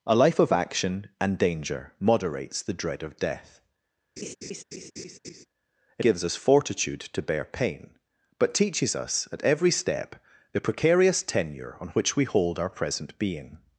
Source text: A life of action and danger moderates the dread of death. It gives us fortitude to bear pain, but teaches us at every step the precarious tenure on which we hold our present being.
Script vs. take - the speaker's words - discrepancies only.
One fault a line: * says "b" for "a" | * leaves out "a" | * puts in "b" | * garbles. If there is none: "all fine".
all fine